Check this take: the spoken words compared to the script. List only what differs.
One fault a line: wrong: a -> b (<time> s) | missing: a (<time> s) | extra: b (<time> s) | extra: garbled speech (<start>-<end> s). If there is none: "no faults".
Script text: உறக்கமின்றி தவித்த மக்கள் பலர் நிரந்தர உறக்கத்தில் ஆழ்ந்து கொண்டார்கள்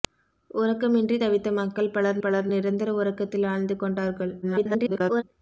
extra: பலர் (2.2 s)
extra: garbled speech (4.4-5.2 s)